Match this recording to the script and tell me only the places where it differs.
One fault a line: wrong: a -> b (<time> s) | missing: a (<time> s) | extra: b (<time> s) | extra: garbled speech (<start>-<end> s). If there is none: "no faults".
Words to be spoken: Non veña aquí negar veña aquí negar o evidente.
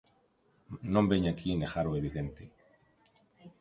missing: veña aquí negar (1.9 s)